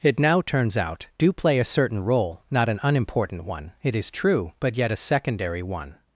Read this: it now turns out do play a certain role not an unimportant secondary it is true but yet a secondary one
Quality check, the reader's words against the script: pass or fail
fail